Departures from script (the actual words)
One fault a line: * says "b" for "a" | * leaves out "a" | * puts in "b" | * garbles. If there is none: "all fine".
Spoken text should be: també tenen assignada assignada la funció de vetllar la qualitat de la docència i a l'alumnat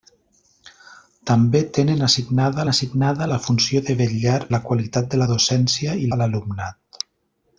all fine